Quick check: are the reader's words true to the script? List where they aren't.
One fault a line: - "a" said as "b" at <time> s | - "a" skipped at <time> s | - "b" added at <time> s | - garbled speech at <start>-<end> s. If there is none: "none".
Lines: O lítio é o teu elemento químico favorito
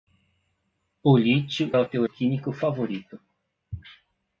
- "é" skipped at 1.7 s
- "elemento" skipped at 2.0 s